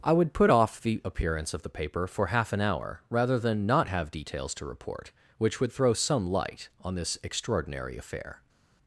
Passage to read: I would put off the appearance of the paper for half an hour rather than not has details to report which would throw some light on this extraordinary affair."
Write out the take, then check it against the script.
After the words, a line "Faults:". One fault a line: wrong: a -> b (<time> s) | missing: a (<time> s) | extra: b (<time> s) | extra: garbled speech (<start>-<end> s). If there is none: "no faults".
I would put off the appearance of the paper for half an hour rather than not have details to report which would throw some light on this extraordinary affair."
Faults:
wrong: has -> have (3.9 s)